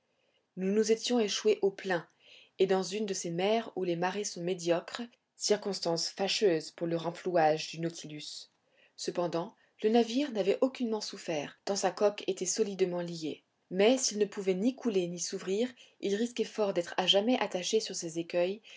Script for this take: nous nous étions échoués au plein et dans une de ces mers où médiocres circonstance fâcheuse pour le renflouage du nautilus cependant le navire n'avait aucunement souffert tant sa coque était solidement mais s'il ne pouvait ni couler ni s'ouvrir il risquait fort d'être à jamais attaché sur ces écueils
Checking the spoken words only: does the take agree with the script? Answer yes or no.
no